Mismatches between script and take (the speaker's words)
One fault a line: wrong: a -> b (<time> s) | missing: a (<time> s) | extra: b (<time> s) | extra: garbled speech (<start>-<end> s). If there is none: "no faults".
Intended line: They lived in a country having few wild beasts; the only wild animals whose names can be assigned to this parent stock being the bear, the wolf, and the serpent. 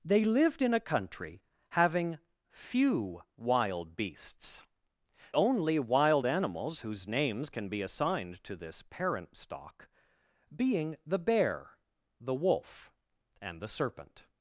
missing: the (4.6 s)